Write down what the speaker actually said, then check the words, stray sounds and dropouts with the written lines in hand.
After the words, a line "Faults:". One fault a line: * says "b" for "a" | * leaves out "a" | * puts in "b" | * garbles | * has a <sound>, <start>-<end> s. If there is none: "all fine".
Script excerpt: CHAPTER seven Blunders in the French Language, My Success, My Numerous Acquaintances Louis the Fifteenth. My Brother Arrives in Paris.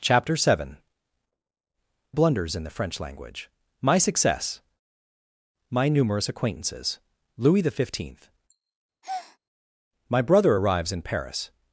CHAPTER seven Blunders in the French Language, My Success, My Numerous Acquaintances Louis the Fifteenth. My Brother Arrives in Paris.
Faults:
* has a breath, 9.0-9.4 s